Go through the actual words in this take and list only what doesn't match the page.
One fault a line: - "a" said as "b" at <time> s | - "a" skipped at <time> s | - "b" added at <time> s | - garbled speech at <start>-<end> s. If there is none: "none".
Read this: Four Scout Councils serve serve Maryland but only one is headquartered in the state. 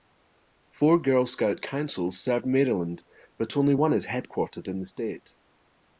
- "Girl" added at 1.0 s
- "serve" skipped at 2.4 s